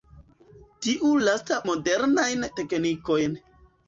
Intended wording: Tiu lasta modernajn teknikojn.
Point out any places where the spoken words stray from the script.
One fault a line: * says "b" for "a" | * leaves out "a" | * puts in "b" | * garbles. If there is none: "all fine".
all fine